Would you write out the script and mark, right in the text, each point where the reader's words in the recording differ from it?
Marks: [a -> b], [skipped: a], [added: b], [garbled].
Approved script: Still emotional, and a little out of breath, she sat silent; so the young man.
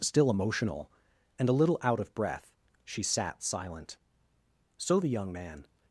Still emotional, and a little out of breath, she sat silent; so the young man.